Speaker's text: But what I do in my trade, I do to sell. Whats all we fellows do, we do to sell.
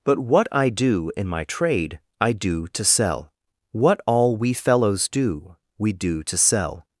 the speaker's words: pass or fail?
fail